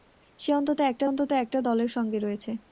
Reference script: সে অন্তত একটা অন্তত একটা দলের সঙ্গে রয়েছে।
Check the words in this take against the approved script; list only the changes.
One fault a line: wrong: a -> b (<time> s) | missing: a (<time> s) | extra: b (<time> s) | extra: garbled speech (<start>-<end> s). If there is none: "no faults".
no faults